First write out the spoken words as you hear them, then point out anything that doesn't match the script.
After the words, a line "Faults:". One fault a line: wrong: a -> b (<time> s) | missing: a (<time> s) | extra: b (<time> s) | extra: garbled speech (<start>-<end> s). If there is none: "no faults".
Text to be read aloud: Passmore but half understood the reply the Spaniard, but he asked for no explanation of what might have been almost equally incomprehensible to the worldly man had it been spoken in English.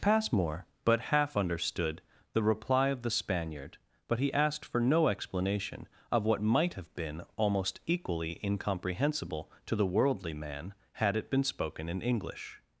Passmore but half understood the reply of the Spaniard, but he asked for no explanation of what might have been almost equally incomprehensible to the worldly man had it been spoken in English.
Faults:
extra: of (2.9 s)